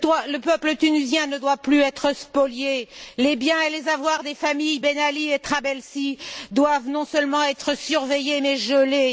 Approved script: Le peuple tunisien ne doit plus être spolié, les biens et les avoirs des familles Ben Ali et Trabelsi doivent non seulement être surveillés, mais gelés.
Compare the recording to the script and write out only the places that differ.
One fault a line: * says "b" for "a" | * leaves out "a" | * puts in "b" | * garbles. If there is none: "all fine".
all fine